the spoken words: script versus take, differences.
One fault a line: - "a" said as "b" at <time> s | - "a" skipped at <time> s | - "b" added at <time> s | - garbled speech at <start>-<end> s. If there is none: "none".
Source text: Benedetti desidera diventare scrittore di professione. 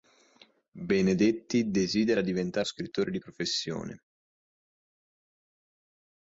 none